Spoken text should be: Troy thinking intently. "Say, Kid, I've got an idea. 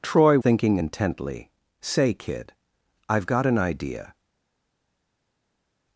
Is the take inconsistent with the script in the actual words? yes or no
no